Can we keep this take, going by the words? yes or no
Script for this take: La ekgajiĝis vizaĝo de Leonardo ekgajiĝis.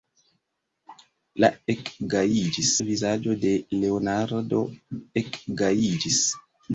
yes